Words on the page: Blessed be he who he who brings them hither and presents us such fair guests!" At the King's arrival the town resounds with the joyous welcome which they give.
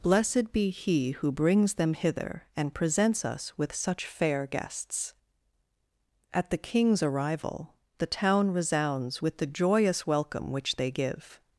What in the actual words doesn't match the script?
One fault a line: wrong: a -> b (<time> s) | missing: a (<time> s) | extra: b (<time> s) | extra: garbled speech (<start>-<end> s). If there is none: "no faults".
missing: he who (1.3 s)
extra: with (3.5 s)